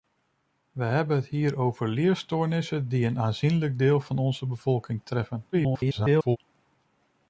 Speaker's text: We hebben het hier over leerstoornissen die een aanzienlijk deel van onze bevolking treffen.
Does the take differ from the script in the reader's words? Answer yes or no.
yes